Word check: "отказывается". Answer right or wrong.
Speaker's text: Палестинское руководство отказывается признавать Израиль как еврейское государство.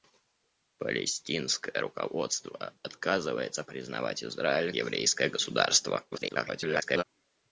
right